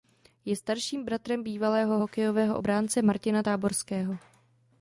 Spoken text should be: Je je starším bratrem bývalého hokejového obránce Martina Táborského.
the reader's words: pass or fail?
fail